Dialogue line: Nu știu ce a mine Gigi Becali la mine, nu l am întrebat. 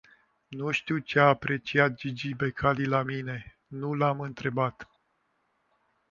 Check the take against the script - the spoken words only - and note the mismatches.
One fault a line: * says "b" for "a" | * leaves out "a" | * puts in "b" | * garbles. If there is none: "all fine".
* says "apreciat" for "mine"